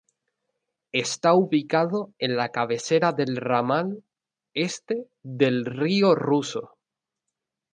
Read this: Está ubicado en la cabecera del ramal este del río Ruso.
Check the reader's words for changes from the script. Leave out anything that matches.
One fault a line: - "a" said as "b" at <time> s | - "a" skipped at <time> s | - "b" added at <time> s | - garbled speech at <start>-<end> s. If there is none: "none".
none